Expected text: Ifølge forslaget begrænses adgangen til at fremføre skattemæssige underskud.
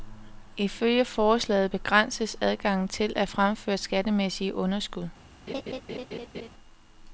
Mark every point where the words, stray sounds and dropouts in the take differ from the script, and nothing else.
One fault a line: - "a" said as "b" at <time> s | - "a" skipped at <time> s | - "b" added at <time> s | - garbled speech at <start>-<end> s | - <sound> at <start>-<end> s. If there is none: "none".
- laugh at 5.5-6.5 s